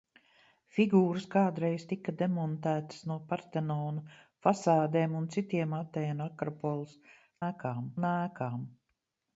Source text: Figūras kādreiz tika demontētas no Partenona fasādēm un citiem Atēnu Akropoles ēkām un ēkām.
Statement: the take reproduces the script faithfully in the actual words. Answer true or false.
true